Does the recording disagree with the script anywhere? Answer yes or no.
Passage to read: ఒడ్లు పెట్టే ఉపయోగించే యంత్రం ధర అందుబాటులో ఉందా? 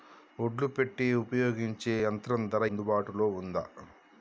no